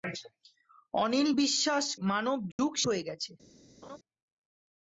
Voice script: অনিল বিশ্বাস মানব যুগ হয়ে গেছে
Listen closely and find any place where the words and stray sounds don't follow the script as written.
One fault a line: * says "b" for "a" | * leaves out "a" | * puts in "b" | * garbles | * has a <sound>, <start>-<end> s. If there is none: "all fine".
* has a dropout, 2.5-2.6 s
* has a laugh, 3.8-4.0 s